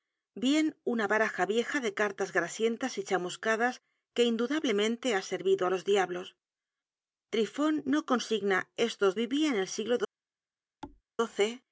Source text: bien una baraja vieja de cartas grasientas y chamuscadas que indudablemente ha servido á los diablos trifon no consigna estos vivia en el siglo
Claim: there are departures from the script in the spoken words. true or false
false